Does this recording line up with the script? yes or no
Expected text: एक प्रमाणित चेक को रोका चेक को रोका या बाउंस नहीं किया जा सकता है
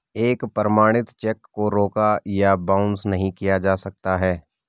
no